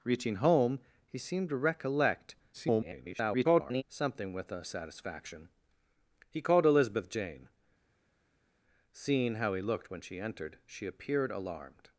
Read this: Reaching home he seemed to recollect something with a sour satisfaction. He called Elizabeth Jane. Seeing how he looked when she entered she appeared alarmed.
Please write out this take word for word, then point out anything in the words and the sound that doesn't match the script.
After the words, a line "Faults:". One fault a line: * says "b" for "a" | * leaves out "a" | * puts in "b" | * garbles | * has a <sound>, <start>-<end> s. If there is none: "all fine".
Reaching home he seemed to recollect [garbled] something with a satisfaction. He called Elizabeth Jane. Seeing how he looked when she entered she appeared alarmed.
Faults:
* garbles
* leaves out "sour"